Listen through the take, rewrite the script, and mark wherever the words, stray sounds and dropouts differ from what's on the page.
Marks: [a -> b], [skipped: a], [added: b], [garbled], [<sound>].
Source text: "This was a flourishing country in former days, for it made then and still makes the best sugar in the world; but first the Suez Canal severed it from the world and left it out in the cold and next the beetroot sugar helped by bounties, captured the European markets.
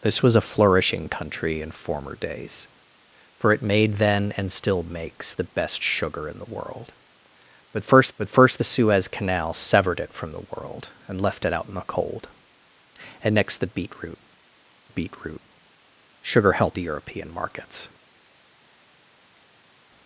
"This was a flourishing country in former days, for it made then and still makes the best sugar in the world; but first [added: but first] the Suez Canal severed it from the world and left it out in the cold and next the beetroot [added: beetroot] sugar helped [skipped: by bounties, captured] the European markets.